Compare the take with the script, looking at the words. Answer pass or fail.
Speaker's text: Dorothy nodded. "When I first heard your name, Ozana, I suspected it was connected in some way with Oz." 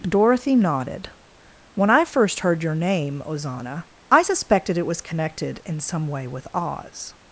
pass